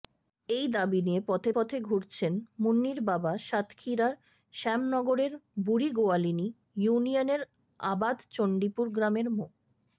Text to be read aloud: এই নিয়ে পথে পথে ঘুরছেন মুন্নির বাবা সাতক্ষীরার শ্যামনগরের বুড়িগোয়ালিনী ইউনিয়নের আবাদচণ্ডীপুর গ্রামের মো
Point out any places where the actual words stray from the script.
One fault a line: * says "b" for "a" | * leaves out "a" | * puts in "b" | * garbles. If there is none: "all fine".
* puts in "দাবি"